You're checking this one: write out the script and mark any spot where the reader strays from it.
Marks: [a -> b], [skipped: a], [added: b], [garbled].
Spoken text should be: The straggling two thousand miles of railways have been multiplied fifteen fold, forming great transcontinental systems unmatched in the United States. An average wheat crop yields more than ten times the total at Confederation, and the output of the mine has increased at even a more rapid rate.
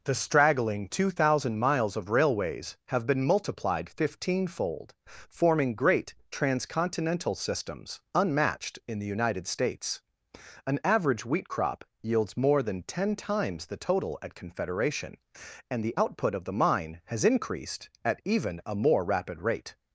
The straggling two thousand miles of railways have been multiplied fifteen fold, forming great transcontinental systems unmatched in the United States. An average wheat crop yields more than ten times the total at Confederation, and the output of the mine has increased at even a more rapid rate.